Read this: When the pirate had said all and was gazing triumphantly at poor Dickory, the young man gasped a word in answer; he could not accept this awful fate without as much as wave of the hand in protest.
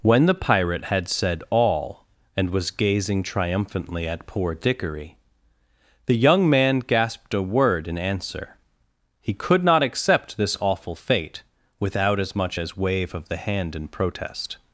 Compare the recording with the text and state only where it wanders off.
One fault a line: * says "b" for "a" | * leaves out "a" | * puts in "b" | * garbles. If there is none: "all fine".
all fine